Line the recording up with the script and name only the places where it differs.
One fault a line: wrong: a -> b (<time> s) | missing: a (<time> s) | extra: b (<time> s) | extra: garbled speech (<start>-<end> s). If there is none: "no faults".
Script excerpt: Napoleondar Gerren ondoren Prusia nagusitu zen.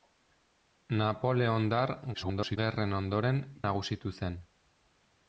extra: garbled speech (2.1-2.6 s)
missing: Prusia (3.4 s)